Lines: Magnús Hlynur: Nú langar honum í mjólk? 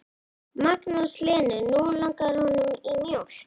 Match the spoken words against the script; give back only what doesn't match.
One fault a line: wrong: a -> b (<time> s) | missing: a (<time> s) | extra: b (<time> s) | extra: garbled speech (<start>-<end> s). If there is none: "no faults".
no faults